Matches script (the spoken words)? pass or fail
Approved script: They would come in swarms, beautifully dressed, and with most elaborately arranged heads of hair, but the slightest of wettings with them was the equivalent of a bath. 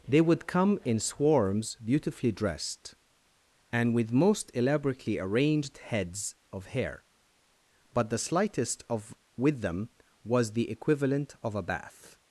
fail